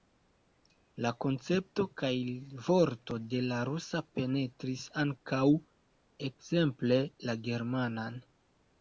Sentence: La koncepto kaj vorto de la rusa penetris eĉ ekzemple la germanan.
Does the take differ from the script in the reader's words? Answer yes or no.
yes